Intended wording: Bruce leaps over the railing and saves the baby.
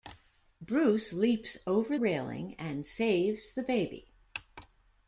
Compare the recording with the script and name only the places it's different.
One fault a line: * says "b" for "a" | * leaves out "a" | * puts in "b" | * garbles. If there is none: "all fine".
* leaves out "the"